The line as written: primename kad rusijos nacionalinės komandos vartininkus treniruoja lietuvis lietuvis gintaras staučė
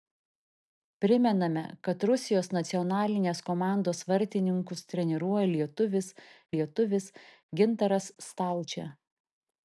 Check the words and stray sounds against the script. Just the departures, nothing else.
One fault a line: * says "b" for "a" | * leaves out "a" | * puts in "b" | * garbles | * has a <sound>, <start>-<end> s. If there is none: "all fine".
all fine